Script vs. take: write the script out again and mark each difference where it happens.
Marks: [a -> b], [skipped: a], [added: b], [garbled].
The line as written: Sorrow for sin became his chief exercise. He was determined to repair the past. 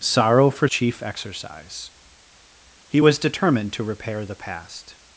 Sorrow for [skipped: sin became his] chief exercise. He was determined to repair the past.